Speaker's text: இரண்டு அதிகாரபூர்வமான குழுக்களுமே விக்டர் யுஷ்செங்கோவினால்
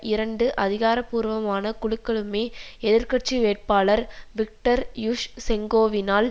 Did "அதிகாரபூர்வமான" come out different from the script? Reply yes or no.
no